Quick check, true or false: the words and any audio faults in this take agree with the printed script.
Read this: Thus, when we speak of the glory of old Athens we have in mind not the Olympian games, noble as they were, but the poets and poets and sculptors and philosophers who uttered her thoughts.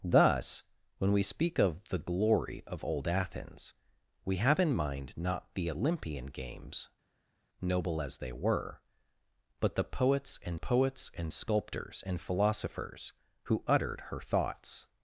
true